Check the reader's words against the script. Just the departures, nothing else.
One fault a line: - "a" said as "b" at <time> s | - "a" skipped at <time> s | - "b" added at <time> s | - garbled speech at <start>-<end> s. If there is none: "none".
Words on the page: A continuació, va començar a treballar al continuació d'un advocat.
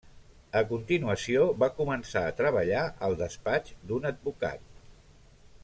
- "continuació" said as "despatx" at 3.2 s